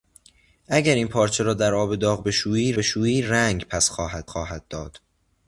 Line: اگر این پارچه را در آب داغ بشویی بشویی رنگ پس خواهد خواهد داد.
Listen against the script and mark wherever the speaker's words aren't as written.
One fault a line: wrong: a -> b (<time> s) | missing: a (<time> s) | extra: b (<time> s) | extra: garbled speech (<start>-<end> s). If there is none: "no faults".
no faults